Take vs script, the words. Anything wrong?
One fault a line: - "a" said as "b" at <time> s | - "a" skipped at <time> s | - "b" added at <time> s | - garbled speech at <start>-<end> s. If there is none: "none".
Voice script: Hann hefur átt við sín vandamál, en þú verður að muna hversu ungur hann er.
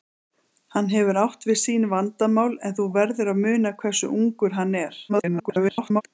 - garbled speech at 5.1-6.0 s